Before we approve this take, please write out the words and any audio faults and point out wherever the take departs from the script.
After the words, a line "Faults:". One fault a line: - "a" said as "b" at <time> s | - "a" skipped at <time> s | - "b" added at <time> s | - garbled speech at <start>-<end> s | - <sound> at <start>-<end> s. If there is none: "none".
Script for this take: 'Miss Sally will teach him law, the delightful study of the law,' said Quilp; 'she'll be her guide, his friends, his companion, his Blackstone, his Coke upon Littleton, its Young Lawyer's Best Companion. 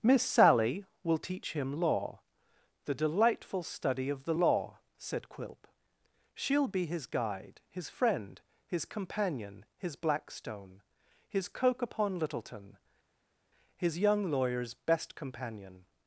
'Miss Sally will teach him law, the delightful study of the law,' said Quilp; 'she'll be his guide, his friend, his companion, his Blackstone, his Coke upon Littleton, his Young Lawyer's Best Companion.
Faults:
- "her" said as "his" at 6.8 s
- "friends" said as "friend" at 7.9 s
- "its" said as "his" at 13.8 s